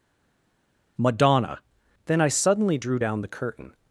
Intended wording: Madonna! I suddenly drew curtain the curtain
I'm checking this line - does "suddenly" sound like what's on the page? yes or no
yes